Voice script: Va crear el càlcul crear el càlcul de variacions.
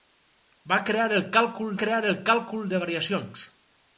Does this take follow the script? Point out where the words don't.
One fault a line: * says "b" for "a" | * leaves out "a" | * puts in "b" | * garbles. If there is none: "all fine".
all fine